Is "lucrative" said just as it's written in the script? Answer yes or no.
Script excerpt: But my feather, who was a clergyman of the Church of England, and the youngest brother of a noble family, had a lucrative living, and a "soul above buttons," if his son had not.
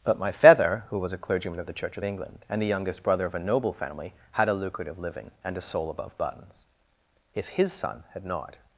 yes